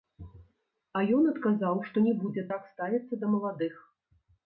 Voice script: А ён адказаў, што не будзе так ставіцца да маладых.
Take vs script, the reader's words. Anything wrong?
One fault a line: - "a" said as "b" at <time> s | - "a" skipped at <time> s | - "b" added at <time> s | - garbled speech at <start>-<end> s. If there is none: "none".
none